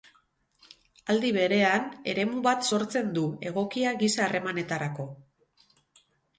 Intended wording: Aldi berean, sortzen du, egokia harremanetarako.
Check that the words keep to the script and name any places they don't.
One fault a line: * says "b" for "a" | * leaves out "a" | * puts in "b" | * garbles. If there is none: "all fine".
* puts in "eremu bat"
* puts in "giza"